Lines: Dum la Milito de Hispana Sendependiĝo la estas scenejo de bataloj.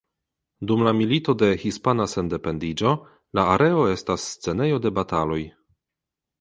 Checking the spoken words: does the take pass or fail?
fail